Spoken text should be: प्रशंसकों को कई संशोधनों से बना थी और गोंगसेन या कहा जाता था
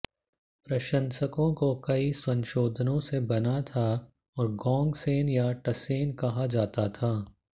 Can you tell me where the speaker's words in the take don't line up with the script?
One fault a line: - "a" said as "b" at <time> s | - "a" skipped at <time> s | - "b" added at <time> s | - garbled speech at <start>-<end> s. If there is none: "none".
- "थी" said as "था" at 3.6 s
- "टसेन" added at 5.7 s